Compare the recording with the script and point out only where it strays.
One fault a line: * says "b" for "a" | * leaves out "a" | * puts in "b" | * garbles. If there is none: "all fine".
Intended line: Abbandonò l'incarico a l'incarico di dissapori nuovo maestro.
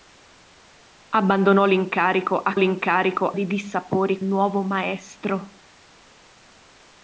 all fine